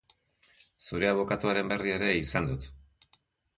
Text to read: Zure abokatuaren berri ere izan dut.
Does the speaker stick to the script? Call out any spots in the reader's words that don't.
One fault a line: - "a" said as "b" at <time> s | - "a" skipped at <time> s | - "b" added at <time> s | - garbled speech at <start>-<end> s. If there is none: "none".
none